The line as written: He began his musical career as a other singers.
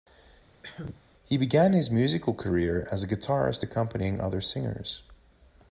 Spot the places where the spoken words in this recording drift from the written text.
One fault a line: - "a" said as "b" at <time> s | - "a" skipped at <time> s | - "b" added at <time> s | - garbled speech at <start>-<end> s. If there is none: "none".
- "guitarist accompanying" added at 3.1 s